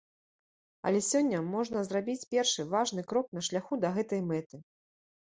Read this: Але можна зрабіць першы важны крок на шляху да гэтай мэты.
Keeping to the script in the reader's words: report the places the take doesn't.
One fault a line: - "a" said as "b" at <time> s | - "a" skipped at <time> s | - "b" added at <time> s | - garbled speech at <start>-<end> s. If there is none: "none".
- "сёння" added at 1.1 s